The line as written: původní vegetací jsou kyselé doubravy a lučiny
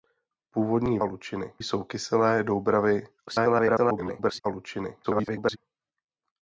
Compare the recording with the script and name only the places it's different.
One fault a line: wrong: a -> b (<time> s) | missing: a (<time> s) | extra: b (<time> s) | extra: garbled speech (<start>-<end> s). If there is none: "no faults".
wrong: vegetací -> lučiny (1.0 s)
extra: garbled speech (3.3-4.4 s)
extra: garbled speech (5.0-5.6 s)